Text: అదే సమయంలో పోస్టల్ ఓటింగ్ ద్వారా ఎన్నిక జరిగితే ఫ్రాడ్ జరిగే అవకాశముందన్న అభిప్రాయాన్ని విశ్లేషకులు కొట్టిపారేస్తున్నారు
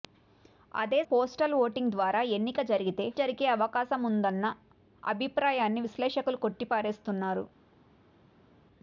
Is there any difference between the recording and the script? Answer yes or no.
yes